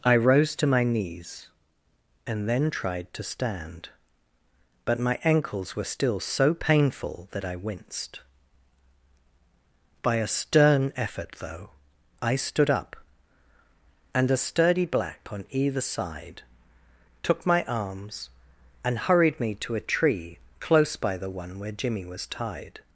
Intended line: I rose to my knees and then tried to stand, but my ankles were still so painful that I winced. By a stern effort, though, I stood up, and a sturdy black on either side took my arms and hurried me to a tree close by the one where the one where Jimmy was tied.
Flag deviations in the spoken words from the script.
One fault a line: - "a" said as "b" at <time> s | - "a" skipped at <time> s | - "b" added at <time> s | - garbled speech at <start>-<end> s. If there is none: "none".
- "the one where" skipped at 21.7 s